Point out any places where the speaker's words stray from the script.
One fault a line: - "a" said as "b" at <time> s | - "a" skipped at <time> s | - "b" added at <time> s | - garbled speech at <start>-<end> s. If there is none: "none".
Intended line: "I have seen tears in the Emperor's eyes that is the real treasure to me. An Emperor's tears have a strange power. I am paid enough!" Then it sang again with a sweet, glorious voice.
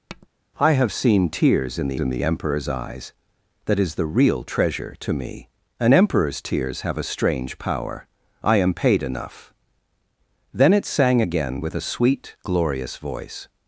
- "in the" added at 2.0 s